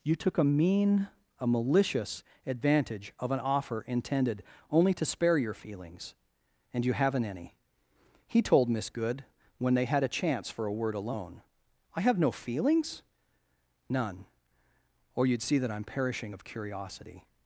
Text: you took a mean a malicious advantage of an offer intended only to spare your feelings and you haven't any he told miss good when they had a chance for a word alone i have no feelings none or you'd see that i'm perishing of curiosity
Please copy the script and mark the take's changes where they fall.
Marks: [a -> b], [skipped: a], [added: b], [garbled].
you took a mean a malicious advantage of an offer intended only to spare your feelings and you haven't any he told miss good when they had a chance for a word alone i have no feelings none or you'd see that i'm perishing of curiosity